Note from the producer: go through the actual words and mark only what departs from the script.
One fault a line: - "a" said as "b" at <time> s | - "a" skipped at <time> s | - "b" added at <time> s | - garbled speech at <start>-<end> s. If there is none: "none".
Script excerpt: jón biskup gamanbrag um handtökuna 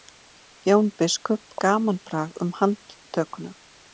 none